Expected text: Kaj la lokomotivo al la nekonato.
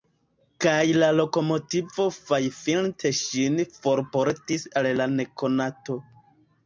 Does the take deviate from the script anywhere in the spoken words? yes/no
yes